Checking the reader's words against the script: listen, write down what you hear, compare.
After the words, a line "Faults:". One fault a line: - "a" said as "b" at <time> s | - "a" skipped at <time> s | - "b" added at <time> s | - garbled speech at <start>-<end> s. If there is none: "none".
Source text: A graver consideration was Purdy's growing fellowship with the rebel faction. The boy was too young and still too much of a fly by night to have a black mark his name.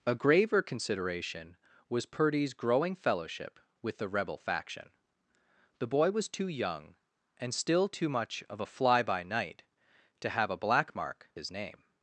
A graver consideration was Purdy's growing fellowship with the rebel faction. The boy was too young and still too much of a fly by night to have a black mark his name.
Faults:
none